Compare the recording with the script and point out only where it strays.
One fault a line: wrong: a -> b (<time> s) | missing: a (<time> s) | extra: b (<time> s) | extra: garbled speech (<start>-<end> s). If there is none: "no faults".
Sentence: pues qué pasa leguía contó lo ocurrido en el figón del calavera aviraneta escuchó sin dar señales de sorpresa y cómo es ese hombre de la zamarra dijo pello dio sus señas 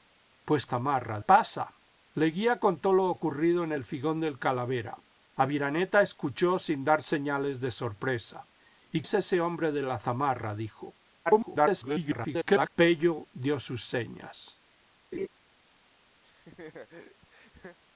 wrong: qué -> zamarra (0.6 s)
missing: cómo (9.0 s)
extra: garbled speech (11.3-12.7 s)